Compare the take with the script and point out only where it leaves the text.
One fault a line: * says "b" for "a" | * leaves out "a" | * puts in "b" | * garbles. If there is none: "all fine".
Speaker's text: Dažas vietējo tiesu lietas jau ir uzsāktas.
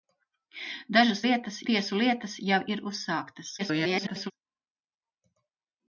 * says "lietas" for "vietējo"
* garbles